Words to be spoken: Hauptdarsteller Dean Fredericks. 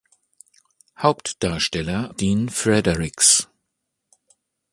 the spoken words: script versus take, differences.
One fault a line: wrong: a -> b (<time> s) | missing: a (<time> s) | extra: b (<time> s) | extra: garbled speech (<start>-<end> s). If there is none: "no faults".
no faults